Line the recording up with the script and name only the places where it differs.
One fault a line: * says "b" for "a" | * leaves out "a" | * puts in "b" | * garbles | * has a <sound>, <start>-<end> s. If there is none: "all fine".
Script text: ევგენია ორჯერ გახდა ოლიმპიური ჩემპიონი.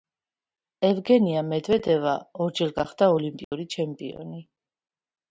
* puts in "მედვედევა"
* has a dropout, 3.4-3.5 s